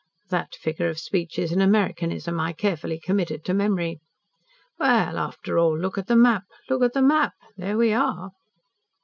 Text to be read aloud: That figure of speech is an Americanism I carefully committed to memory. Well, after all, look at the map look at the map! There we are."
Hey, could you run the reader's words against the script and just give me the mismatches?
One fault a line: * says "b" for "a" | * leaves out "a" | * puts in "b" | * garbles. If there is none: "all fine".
all fine